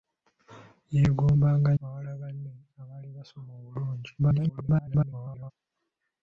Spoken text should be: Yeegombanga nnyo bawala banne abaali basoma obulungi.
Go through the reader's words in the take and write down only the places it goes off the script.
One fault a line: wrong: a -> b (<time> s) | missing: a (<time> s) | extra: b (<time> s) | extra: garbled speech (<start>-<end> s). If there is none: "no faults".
missing: nnyo (1.7 s)
extra: garbled speech (4.2-5.5 s)